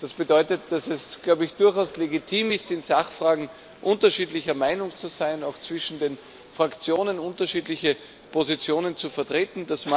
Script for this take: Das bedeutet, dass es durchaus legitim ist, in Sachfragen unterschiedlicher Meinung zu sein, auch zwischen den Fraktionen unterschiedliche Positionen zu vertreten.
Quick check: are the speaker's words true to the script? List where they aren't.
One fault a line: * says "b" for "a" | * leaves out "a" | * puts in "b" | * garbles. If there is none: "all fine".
all fine